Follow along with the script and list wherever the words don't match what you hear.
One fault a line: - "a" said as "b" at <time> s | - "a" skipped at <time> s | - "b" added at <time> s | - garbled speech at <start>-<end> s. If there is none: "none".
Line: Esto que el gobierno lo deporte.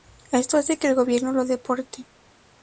- "hace" added at 0.6 s